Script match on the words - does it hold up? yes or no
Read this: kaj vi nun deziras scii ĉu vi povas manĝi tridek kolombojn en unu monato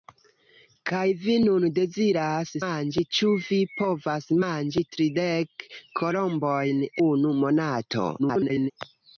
no